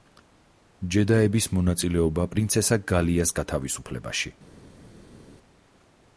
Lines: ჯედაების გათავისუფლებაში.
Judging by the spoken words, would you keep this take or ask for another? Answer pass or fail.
fail